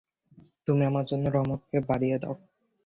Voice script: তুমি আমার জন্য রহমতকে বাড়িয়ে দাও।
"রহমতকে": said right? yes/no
yes